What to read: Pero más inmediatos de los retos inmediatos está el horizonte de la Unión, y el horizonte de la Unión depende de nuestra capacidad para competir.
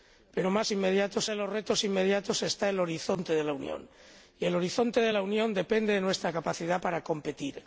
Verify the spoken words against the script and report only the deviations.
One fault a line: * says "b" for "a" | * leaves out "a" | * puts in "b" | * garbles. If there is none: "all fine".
all fine